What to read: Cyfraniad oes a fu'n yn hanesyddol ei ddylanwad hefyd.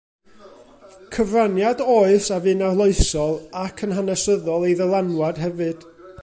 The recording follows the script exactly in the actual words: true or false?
false